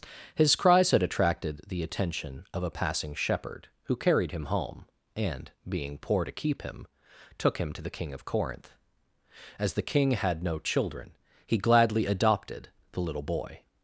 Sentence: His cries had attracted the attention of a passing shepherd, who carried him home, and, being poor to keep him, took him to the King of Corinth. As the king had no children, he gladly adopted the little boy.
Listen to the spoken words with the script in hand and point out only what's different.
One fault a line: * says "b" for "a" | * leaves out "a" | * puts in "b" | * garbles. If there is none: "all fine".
all fine